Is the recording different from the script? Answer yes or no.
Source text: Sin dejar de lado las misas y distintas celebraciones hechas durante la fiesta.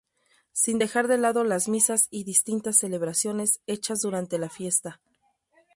no